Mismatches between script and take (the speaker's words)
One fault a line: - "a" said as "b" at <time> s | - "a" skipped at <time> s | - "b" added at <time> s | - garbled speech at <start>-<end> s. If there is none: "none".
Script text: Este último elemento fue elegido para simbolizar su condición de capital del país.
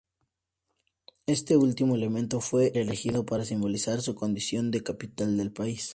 none